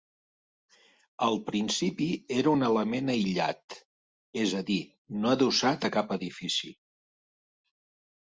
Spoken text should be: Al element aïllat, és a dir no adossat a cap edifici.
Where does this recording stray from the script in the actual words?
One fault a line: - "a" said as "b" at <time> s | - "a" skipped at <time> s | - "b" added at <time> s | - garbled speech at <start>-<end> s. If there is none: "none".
- "principi era un" added at 1.5 s